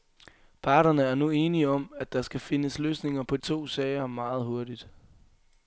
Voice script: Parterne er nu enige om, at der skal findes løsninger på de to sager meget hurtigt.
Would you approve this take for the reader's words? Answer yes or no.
no